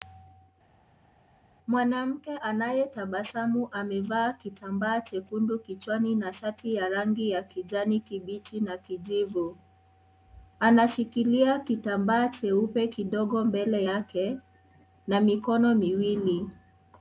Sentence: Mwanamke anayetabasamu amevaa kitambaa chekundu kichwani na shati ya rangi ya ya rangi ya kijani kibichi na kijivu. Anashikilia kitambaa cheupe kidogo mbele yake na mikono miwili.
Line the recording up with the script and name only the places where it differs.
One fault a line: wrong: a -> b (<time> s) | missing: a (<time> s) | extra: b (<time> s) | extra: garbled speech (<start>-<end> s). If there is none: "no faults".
missing: ya rangi ya (7.4 s)